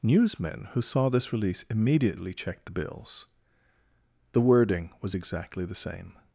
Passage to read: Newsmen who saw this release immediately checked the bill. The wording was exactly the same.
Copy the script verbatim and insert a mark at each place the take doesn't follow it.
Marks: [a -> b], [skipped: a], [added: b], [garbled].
Newsmen who saw this release immediately checked the [bill. -> bills] The wording was exactly the same.